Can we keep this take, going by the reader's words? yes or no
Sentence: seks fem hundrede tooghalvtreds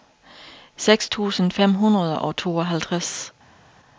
no